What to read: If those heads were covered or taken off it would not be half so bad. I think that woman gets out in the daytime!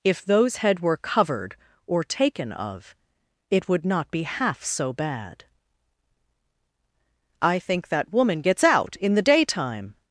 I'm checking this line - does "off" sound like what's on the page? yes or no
no